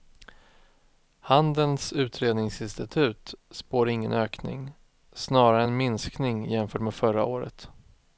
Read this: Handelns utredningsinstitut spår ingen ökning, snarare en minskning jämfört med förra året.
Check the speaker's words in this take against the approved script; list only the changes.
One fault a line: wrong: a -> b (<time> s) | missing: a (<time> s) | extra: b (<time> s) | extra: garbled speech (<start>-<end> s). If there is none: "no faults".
no faults